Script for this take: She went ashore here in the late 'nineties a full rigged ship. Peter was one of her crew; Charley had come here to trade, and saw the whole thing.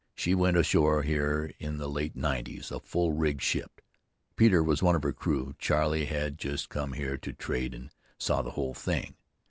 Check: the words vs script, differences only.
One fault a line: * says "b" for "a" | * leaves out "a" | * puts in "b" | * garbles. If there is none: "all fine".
* puts in "just"